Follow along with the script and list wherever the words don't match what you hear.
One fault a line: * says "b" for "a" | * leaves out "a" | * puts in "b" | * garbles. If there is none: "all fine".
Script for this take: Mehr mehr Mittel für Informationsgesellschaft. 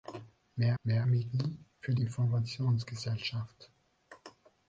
all fine